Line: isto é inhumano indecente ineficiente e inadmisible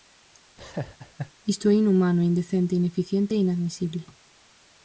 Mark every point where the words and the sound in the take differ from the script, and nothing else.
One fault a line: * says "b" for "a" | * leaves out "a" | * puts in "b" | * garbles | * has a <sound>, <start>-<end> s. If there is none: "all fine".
* has a laugh, 0.6-1.3 s